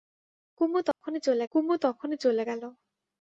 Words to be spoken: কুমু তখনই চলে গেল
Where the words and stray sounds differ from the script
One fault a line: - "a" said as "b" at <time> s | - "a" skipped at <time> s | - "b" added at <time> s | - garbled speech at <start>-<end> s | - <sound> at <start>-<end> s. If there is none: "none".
- dropout at 0.9-1.0 s
- "কুমু তখনই চলে" added at 1.6 s